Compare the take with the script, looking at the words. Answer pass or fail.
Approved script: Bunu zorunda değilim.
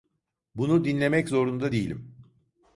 fail